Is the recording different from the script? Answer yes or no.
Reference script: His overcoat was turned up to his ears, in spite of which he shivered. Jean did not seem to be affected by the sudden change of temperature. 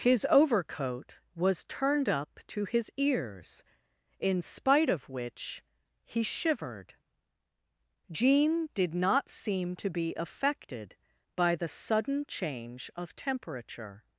no